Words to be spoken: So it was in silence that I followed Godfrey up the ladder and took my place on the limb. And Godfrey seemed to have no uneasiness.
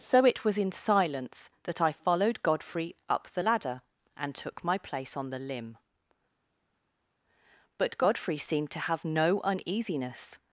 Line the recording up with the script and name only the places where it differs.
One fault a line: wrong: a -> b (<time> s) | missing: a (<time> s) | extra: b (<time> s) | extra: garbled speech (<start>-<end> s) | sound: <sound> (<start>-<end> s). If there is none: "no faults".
wrong: And -> But (7.8 s)